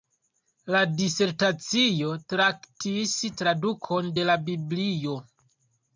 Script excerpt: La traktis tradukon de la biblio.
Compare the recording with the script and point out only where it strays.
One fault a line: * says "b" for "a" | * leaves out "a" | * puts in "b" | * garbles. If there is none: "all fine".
* puts in "disertacio"